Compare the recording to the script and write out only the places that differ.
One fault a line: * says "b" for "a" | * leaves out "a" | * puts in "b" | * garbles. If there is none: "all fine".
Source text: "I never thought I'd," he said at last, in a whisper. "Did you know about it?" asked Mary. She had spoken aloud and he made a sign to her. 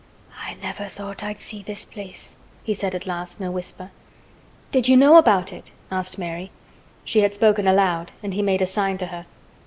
* puts in "see this place"